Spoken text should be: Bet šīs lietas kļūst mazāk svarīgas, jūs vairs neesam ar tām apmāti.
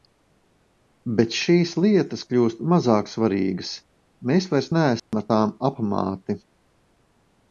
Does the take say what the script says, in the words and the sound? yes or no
no